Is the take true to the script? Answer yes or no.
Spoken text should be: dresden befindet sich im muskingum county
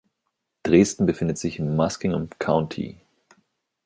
yes